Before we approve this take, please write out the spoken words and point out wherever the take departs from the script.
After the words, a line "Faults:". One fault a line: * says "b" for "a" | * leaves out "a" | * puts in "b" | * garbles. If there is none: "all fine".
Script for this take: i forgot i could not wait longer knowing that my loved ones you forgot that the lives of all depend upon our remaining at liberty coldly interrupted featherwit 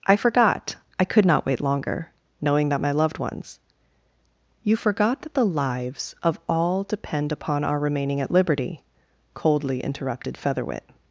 i forgot i could not wait longer knowing that my loved ones you forgot that the lives of all depend upon our remaining at liberty coldly interrupted featherwit
Faults:
all fine